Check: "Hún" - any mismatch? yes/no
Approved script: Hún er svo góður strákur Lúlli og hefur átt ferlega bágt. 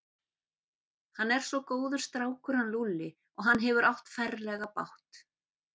yes